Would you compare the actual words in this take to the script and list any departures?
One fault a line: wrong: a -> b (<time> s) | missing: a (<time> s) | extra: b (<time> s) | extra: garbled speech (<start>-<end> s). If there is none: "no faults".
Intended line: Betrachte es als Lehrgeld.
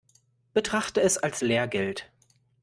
no faults